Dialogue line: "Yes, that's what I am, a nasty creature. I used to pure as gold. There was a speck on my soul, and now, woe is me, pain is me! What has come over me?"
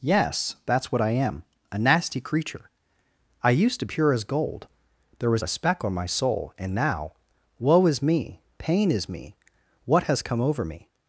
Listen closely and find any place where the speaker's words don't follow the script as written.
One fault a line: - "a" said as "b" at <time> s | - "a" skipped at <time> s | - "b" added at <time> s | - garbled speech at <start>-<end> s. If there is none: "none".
none